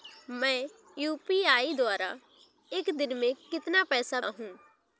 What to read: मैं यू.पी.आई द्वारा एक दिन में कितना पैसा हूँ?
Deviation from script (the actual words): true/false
false